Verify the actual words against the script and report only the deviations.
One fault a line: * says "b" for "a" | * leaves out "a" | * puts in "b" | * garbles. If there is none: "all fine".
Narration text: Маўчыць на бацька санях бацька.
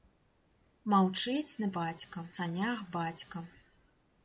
all fine